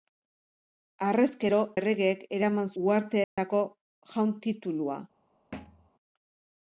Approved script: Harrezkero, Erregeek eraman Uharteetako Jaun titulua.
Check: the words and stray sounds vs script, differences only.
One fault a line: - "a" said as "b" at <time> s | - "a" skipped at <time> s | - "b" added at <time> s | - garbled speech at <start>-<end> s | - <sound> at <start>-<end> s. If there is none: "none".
- dropout at 3.2-3.4 s
- thud at 5.5-5.9 s